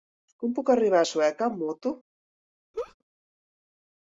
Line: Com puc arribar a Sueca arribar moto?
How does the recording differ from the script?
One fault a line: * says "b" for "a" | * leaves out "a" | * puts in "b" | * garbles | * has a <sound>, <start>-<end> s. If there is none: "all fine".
* says "amb" for "arribar"
* has a laugh, 2.7-2.9 s